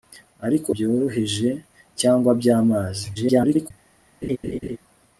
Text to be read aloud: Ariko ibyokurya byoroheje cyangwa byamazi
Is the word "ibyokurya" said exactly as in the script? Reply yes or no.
no